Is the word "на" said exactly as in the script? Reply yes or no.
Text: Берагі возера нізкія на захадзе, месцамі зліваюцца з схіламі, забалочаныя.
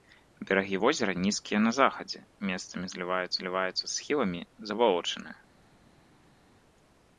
yes